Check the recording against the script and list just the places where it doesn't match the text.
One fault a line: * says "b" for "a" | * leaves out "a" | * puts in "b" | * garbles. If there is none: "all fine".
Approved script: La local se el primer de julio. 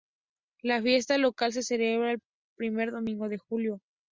* puts in "fiesta"
* puts in "celebra"
* puts in "domingo"